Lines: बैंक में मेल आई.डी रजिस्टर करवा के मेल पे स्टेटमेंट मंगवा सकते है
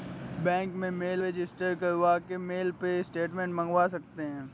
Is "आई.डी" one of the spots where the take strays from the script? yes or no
yes